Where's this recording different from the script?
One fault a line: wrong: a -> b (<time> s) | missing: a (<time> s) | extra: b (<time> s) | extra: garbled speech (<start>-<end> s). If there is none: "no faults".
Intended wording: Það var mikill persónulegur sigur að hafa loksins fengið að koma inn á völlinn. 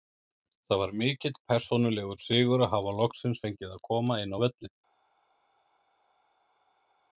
no faults